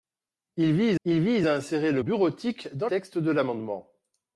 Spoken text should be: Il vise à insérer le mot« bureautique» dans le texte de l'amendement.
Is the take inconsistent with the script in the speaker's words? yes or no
yes